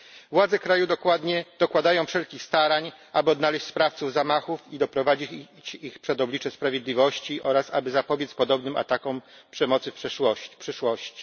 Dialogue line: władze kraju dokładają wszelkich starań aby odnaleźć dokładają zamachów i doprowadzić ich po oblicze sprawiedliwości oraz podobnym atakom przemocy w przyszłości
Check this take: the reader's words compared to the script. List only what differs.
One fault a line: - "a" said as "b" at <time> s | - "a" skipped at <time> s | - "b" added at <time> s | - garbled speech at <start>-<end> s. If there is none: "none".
- "dokładają" said as "sprawców" at 3.6 s
- "po" said as "przed" at 6.0 s
- "aby zapobiec" added at 7.7 s